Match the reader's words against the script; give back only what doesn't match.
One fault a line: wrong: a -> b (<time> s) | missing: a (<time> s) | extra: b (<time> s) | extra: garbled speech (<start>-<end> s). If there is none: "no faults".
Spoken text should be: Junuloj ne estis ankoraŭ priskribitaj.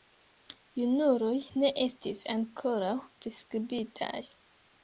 no faults